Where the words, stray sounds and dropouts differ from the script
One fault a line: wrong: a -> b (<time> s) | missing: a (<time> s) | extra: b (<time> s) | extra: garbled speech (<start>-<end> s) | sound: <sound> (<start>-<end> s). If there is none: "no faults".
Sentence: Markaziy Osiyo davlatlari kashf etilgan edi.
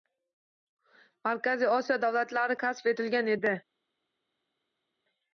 no faults